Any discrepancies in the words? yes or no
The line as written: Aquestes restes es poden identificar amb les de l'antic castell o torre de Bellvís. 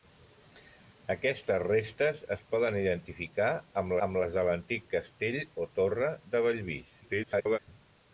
yes